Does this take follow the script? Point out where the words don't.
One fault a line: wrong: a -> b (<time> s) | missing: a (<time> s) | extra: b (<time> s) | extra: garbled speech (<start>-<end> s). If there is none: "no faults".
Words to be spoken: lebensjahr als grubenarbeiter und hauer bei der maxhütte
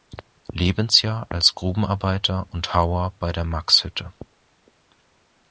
no faults